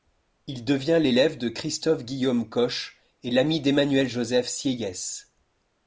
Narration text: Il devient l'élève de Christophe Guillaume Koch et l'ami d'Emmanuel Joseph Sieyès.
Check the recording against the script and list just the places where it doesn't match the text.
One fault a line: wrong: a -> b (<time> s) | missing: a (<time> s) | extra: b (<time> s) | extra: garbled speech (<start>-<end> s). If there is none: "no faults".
no faults